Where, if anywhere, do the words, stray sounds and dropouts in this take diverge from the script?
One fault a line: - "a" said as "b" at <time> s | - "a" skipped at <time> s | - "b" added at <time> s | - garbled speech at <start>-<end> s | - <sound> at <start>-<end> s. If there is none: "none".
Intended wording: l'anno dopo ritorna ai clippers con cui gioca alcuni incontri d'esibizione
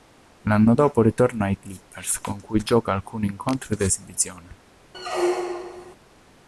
- squeak at 4.9-6.0 s